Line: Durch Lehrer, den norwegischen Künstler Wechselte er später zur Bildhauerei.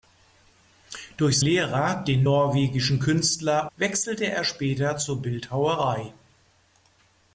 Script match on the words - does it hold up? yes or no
yes